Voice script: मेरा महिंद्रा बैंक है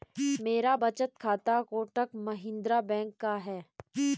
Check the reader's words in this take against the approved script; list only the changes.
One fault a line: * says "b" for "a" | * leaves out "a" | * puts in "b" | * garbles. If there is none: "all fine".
* puts in "बचत खाता कोटक"
* puts in "का"